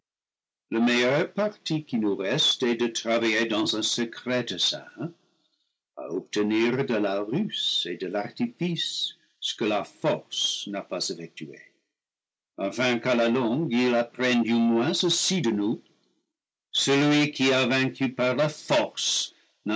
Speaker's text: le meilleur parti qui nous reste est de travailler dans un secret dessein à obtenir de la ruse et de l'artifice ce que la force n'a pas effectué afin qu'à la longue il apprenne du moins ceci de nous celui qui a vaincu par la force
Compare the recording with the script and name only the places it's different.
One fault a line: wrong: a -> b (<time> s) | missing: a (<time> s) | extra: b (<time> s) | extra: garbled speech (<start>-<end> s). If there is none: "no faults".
no faults